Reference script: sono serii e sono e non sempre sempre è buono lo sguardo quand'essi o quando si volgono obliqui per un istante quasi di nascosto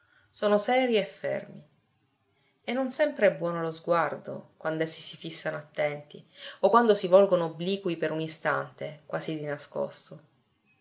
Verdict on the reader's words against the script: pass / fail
fail